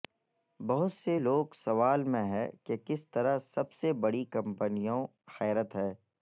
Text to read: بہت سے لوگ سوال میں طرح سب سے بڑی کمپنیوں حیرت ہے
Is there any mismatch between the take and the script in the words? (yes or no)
yes